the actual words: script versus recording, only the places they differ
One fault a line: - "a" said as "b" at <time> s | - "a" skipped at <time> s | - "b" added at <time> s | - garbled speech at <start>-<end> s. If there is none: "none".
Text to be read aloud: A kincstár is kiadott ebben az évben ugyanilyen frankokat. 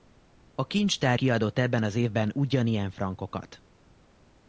- "is" skipped at 1.2 s